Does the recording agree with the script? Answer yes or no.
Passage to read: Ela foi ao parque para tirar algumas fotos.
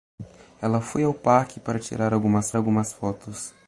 no